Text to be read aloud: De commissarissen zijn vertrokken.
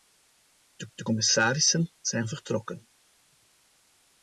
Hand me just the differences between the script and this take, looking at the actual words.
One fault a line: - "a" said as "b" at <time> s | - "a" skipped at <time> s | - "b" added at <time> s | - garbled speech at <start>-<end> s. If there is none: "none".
- "de" added at 0.9 s